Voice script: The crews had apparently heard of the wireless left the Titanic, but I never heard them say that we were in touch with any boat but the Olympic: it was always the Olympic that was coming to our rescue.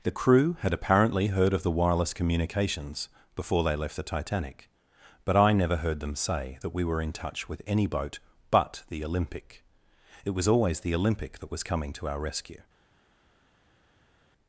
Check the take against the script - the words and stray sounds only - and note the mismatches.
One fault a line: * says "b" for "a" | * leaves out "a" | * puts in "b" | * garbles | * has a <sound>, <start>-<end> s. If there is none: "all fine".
* says "crew" for "crews"
* puts in "communications before they"